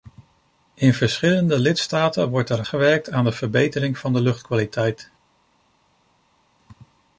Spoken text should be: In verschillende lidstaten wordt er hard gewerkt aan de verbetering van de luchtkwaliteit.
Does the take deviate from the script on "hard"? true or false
true